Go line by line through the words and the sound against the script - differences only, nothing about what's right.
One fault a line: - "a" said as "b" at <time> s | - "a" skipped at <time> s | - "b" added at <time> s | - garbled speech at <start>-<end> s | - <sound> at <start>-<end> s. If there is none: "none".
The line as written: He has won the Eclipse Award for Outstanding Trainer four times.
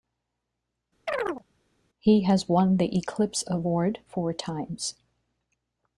- chirp at 1.1-1.4 s
- "for Outstanding Trainer" skipped at 4.0 s